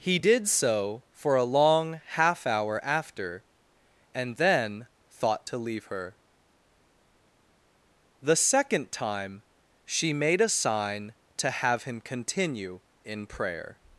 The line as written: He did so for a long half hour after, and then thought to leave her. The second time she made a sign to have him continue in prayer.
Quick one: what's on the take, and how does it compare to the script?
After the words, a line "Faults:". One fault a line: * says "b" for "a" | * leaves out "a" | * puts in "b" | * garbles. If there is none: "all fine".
He did so for a long half hour after, and then thought to leave her. The second time she made a sign to have him continue in prayer.
Faults:
all fine